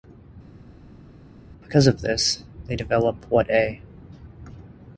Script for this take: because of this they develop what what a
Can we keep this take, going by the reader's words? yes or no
no